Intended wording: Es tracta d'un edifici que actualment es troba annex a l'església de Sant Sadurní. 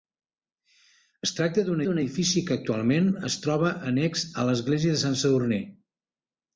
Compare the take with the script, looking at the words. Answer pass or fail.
fail